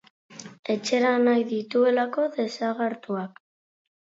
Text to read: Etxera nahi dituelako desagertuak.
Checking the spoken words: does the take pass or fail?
pass